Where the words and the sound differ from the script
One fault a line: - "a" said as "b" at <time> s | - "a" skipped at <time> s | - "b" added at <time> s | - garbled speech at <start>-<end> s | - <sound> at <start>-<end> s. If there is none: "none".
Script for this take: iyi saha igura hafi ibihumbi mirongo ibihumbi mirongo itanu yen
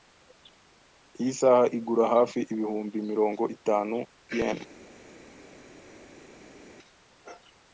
- "ibihumbi mirongo" skipped at 3.4 s